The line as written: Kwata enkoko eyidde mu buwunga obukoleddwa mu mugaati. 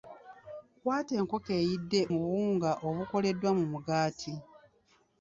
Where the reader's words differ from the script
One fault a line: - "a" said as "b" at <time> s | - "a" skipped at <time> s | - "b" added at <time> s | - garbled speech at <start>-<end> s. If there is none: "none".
none